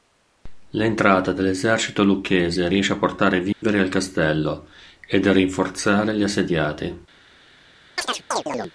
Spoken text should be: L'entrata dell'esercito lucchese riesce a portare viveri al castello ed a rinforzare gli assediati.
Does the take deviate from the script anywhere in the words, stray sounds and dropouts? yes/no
yes